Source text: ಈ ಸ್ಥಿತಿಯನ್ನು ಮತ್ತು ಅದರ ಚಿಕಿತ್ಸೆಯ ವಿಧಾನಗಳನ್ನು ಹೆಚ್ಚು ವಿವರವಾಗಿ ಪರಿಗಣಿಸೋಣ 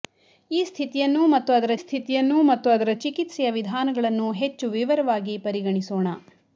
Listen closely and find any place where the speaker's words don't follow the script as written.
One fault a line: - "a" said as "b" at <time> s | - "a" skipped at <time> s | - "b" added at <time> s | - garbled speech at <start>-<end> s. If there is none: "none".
- "ಸ್ಥಿತಿಯನ್ನು ಮತ್ತು ಅದರ" added at 1.8 s